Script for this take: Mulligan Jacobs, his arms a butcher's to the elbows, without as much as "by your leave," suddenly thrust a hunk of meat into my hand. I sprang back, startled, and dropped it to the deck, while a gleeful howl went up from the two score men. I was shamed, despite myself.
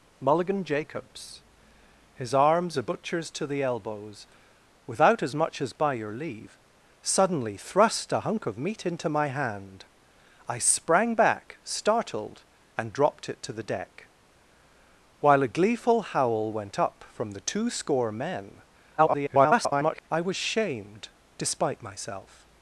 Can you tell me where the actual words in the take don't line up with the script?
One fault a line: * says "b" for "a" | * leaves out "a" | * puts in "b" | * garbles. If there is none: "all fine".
* garbles